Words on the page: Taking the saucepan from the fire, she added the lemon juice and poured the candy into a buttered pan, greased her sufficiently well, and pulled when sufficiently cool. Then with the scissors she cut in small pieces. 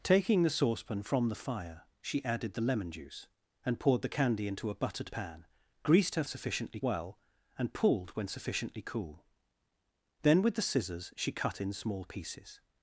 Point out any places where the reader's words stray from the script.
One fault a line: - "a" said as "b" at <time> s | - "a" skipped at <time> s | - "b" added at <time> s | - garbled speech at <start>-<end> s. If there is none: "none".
none